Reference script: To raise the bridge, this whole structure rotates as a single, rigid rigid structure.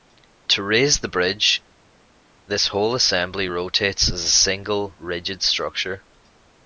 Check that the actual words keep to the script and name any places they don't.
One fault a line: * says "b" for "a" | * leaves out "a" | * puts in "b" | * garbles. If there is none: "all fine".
* says "assembly" for "structure"
* leaves out "rigid"